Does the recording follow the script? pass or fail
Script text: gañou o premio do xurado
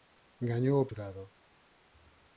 fail